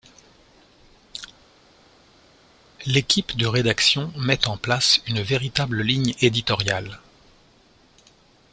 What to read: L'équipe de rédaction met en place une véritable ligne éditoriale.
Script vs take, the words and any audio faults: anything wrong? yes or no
no